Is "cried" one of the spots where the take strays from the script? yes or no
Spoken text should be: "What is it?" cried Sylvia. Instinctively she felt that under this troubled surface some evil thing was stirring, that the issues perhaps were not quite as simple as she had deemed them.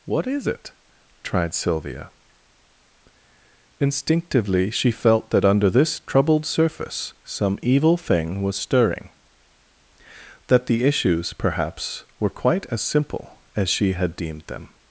yes